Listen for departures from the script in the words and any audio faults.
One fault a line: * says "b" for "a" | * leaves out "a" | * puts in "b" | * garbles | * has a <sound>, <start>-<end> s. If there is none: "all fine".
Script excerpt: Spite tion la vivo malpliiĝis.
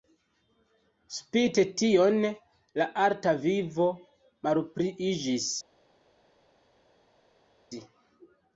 * puts in "arta"